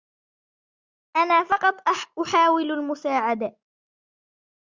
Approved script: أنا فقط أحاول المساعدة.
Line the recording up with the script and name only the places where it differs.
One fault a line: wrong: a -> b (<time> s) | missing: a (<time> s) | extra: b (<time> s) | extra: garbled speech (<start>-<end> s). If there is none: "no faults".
no faults